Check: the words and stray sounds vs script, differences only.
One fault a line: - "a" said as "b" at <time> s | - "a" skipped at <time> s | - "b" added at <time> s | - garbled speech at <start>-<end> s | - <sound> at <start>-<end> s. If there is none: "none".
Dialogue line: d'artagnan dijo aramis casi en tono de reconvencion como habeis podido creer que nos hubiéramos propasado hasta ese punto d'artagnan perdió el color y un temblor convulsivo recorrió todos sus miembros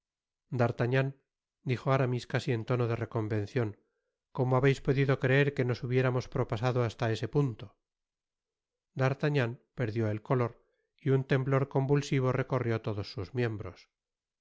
none